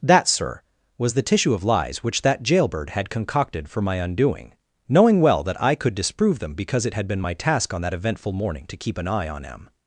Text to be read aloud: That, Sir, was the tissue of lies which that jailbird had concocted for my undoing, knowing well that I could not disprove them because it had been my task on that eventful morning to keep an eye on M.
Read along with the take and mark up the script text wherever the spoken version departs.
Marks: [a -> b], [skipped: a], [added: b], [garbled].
That, Sir, was the tissue of lies which that jailbird had concocted for my undoing, knowing well that I could [skipped: not] disprove them because it had been my task on that eventful morning to keep an eye on M.